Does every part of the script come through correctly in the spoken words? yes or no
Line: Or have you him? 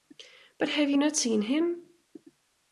no